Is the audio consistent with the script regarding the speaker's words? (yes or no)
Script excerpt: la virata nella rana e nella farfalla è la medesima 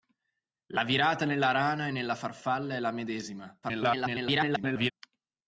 no